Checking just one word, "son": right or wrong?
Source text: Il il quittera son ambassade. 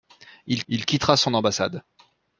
right